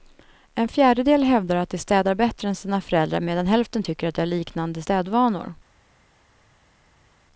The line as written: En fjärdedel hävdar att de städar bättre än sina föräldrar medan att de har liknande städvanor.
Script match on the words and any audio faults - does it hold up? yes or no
no